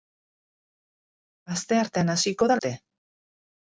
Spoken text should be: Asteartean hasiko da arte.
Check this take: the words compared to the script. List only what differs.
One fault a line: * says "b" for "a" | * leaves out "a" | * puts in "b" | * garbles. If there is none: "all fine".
all fine